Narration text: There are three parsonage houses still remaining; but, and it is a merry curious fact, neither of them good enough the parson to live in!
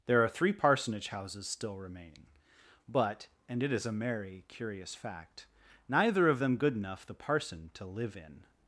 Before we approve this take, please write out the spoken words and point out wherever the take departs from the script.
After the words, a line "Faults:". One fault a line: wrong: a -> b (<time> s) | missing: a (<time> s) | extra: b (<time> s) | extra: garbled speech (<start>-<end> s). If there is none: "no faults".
There are three parsonage houses still remaining; but, and it is a merry curious fact, neither of them good enough the parson to live in!
Faults:
no faults